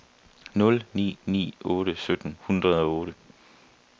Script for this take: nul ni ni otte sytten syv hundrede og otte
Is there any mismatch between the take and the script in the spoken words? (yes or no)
yes